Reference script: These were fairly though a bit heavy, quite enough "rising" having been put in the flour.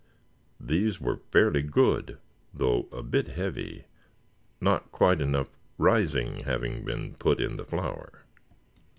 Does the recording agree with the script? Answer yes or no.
no